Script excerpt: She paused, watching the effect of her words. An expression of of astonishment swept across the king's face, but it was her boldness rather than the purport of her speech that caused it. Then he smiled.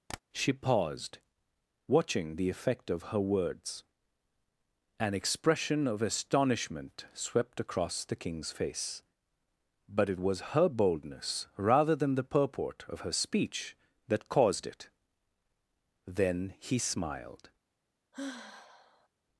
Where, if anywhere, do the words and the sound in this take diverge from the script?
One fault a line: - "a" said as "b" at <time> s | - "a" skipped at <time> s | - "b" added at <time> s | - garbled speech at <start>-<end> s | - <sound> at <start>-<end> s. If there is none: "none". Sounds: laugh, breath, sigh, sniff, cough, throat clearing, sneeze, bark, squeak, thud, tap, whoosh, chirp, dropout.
- tap at 0.1-0.2 s
- "of" skipped at 6.0 s
- sigh at 18.1-19.1 s